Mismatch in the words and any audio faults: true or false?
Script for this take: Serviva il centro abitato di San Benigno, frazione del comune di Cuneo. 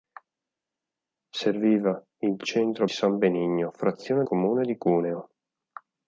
true